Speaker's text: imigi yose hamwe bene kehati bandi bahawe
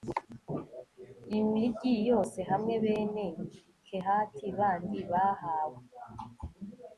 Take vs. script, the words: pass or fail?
pass